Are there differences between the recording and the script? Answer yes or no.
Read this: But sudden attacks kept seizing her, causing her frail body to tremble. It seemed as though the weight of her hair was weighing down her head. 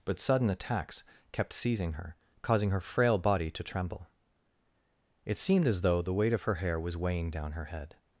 no